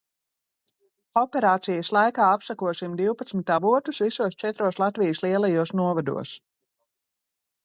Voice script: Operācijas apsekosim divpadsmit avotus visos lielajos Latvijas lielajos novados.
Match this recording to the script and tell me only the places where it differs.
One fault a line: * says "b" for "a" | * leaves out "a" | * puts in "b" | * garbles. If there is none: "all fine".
* puts in "laikā"
* says "četros" for "lielajos"